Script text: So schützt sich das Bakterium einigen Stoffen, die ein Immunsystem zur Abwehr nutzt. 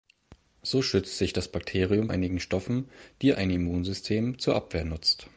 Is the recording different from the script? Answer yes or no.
no